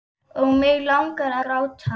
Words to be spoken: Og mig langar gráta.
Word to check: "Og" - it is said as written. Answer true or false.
true